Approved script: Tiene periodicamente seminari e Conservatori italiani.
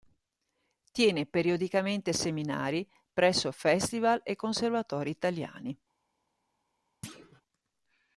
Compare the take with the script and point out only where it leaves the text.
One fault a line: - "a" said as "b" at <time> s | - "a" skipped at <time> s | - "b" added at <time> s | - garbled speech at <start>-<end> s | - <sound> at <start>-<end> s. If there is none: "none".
- "presso Festival" added at 3.1 s
- thud at 7.0-7.4 s